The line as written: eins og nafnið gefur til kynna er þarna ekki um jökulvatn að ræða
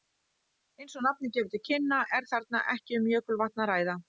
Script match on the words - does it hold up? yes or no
yes